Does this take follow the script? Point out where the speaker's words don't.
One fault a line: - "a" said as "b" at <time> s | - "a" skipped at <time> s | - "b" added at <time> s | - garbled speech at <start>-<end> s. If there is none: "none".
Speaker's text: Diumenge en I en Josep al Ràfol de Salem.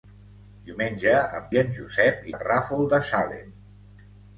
none